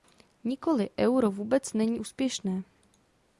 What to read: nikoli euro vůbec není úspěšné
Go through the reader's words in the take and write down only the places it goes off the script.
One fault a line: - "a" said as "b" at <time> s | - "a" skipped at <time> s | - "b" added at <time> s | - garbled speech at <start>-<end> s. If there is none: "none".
none